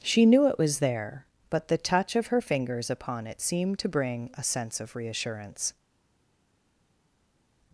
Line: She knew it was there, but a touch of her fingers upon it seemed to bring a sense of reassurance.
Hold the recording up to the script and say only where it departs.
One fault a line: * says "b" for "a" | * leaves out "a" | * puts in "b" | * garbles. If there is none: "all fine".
* says "the" for "a"